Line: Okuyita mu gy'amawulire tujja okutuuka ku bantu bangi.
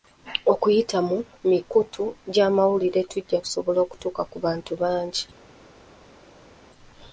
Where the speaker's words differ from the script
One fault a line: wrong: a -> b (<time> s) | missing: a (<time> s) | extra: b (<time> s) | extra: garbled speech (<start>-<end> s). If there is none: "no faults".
extra: mikutu (1.5 s)
extra: kusobola (3.4 s)